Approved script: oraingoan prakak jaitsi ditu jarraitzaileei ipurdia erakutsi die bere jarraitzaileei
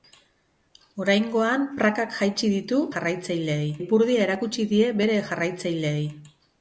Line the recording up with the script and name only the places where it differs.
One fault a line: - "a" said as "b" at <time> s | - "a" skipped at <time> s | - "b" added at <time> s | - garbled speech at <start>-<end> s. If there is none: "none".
none